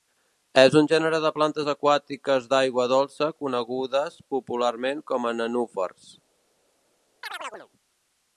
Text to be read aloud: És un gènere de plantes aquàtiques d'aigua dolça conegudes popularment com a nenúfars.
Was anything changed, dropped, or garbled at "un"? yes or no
no